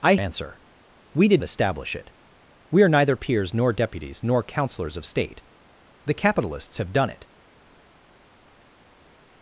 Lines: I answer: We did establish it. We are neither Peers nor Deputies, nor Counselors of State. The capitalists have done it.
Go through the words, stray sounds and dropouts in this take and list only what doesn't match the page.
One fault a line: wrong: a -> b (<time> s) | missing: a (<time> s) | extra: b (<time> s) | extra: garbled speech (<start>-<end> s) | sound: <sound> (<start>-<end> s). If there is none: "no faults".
no faults